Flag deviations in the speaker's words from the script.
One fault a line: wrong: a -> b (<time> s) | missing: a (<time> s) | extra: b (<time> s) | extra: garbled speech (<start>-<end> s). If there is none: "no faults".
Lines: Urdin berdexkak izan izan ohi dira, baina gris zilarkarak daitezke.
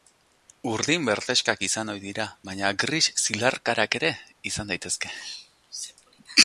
missing: izan (1.9 s)
extra: ere izan (4.0 s)